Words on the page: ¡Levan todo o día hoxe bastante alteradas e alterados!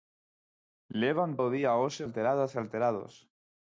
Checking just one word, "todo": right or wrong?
wrong